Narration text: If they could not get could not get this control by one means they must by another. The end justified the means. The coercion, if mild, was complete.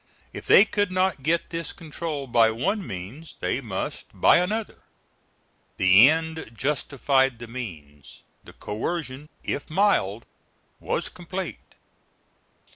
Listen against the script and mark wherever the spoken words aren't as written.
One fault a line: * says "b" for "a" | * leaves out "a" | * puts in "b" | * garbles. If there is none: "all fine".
* leaves out "could not get"